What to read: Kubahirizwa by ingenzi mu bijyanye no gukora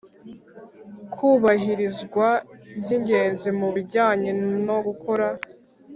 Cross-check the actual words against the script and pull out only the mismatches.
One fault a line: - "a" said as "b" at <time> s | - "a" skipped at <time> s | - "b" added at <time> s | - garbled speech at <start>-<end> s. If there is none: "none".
none